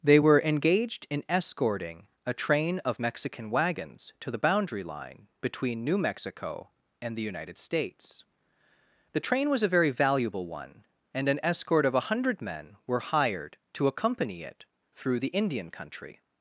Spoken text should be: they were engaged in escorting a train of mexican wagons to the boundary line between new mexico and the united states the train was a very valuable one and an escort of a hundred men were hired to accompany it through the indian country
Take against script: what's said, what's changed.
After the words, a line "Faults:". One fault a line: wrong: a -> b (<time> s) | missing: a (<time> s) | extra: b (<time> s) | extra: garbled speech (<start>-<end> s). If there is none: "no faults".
they were engaged in escorting a train of mexican wagons to the boundary line between new mexico and the united states the train was a very valuable one and an escort of a hundred men were hired to accompany it through the indian country
Faults:
no faults